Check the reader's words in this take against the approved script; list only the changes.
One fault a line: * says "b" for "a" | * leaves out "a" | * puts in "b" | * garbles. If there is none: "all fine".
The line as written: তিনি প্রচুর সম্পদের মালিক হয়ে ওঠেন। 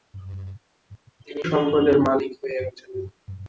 * leaves out "প্রচুর"